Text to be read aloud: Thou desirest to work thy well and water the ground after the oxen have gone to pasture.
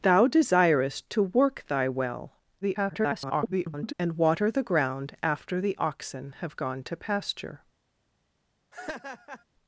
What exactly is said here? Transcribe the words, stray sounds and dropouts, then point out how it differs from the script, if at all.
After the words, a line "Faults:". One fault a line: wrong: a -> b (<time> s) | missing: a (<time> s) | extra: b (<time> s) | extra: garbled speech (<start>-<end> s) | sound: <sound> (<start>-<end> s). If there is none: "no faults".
Thou desirest to work thy well [garbled] and water the ground after the oxen have gone to pasture.
Faults:
extra: garbled speech (2.6-3.9 s)
sound: laugh (8.7-9.4 s)